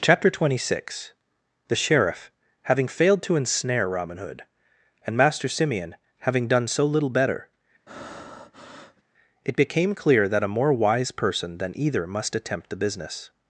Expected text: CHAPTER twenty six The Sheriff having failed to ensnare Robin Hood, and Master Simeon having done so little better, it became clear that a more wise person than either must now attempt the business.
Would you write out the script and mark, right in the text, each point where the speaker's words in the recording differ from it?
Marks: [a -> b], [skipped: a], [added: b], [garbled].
CHAPTER twenty six The Sheriff having failed to ensnare Robin Hood, and Master Simeon having done so little better, it became clear that a more wise person than either must [skipped: now] attempt the business.